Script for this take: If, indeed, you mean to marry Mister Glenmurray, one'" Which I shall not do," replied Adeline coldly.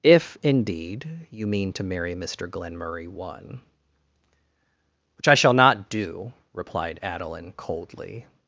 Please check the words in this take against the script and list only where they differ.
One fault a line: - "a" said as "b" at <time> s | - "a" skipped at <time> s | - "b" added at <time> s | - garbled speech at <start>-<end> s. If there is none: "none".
none